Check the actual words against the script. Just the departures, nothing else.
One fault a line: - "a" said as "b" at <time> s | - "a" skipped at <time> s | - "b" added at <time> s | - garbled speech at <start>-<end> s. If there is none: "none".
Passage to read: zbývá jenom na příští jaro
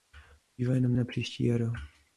none